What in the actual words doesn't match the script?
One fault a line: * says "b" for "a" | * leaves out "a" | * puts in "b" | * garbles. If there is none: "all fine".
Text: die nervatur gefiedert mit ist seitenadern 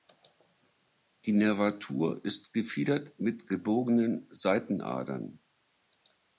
* puts in "ist"
* says "gebogenen" for "ist"